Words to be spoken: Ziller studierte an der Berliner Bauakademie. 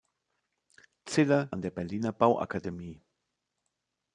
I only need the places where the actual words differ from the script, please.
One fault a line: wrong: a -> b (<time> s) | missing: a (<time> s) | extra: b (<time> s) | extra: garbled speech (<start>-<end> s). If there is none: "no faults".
missing: studierte (1.5 s)